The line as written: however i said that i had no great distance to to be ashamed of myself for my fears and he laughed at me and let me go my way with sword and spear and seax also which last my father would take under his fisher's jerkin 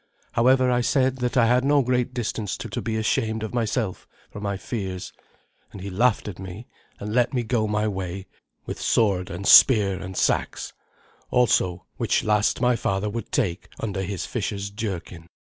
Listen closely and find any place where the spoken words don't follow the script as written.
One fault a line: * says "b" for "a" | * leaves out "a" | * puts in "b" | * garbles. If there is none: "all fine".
all fine